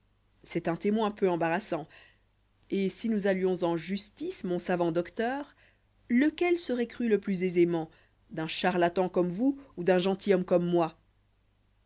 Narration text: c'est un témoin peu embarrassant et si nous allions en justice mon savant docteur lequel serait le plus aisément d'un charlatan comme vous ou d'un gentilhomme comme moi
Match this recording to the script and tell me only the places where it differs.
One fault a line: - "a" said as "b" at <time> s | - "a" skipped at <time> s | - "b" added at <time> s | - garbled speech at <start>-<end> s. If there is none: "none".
- "cru" added at 6.9 s